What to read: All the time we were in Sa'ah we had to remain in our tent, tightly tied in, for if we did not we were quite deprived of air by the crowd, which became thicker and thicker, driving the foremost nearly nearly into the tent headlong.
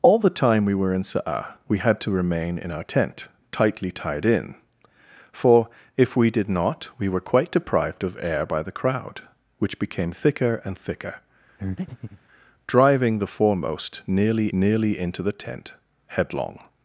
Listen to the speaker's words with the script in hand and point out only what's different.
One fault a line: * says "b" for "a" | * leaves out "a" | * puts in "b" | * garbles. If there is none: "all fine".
all fine